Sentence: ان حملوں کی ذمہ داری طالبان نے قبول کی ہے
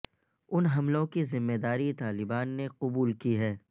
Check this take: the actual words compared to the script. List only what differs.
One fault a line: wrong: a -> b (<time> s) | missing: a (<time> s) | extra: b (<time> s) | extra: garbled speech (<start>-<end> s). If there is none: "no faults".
no faults